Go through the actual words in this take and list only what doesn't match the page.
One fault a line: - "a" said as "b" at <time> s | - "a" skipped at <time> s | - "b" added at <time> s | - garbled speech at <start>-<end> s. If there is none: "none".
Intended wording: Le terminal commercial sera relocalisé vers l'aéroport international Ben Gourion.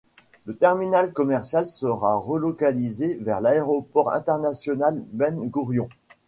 none